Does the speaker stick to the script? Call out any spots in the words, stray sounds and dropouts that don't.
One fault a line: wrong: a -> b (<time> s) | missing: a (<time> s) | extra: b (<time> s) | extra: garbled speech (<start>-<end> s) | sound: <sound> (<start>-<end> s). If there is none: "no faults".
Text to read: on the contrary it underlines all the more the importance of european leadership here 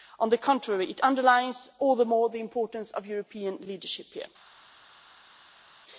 no faults